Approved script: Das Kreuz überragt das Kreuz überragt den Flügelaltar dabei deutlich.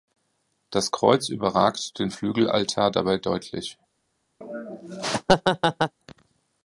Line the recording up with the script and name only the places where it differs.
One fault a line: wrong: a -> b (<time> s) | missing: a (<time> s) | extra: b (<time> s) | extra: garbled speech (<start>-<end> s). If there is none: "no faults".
missing: das Kreuz überragt (2.0 s)